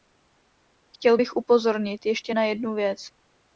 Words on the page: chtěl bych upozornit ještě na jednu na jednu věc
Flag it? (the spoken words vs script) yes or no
yes